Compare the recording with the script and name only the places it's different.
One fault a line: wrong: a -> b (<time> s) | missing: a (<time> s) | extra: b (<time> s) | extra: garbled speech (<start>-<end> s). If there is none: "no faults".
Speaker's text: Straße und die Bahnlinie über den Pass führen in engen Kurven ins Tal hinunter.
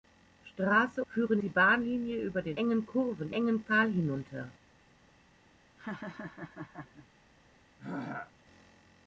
wrong: und -> führen (1.1 s)
missing: Pass führen in (2.6 s)
wrong: ins -> engen (3.3 s)